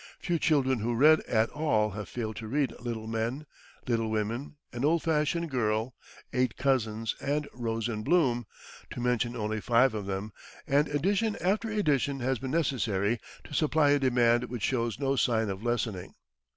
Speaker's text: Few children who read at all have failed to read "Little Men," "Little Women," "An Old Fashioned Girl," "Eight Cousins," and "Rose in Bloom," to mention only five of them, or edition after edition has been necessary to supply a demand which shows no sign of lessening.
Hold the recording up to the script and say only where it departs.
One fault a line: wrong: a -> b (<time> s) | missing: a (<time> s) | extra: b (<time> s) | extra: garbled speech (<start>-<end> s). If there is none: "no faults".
wrong: or -> and (10.7 s)